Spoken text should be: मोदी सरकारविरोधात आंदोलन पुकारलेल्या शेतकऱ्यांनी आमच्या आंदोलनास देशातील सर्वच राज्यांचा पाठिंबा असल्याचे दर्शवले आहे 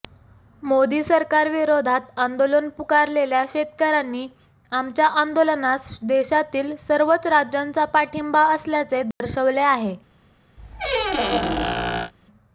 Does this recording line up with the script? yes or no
yes